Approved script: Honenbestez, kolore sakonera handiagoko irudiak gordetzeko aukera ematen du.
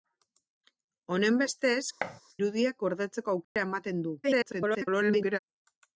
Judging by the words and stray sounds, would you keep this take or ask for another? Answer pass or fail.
fail